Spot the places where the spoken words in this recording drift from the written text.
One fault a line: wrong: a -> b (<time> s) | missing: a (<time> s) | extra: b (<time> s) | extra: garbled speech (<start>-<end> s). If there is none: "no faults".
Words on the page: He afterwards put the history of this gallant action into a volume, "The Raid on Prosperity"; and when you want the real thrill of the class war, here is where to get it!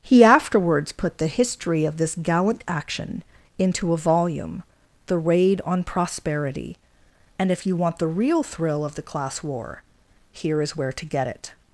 wrong: when -> if (7.5 s)